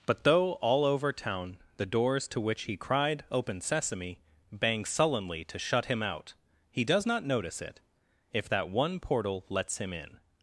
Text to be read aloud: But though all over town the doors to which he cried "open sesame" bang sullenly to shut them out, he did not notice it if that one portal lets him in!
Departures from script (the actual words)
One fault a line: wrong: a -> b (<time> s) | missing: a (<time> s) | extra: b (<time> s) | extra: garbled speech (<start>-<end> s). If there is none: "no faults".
wrong: them -> him (5.8 s)
wrong: did -> does (6.8 s)